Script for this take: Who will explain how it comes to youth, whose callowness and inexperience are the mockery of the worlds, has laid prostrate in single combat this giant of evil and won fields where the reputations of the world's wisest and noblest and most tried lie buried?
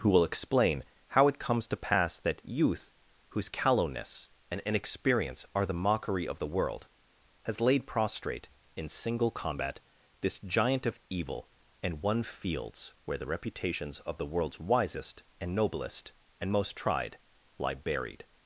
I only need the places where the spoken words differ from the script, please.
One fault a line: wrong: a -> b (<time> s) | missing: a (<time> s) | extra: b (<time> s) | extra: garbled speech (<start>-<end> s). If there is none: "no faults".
extra: pass that (1.9 s)
wrong: worlds -> world (6.5 s)